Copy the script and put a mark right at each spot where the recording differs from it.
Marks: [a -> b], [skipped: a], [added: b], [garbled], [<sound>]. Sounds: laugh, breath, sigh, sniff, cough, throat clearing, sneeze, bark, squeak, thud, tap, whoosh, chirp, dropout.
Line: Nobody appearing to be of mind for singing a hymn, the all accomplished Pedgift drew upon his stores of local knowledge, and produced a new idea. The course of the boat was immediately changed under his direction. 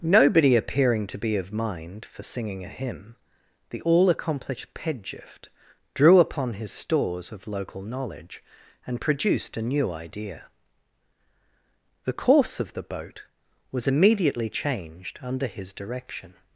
Nobody appearing to be of mind for singing a hymn, the all accomplished Pedgift drew upon his stores of local knowledge, and produced a new idea. The course of the boat was immediately changed under his direction.